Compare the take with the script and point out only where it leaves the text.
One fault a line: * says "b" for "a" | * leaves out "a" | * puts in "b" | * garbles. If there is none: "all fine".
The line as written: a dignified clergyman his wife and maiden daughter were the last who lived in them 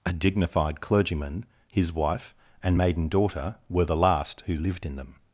all fine